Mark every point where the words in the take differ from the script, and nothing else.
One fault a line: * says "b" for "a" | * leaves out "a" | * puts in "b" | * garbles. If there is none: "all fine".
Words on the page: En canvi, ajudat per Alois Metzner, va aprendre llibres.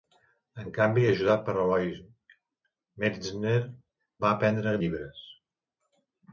all fine